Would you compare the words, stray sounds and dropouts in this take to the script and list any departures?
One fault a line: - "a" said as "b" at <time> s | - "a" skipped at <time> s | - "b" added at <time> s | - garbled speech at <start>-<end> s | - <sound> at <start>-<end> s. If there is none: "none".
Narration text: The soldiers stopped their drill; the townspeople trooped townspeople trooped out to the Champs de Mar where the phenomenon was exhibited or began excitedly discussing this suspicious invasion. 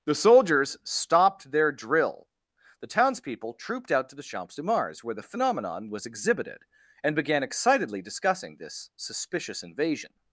- "townspeople trooped" skipped at 3.9 s
- "Mar" said as "Mars" at 4.6 s
- "or" said as "and" at 7.0 s